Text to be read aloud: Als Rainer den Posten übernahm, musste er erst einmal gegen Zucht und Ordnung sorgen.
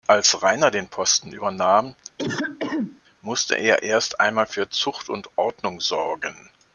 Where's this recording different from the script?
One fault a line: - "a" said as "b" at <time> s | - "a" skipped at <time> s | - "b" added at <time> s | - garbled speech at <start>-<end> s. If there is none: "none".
- "gegen" said as "für" at 4.5 s